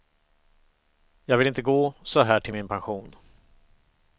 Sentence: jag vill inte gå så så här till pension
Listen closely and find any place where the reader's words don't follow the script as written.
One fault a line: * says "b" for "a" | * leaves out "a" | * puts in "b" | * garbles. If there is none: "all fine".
* leaves out "så"
* puts in "min"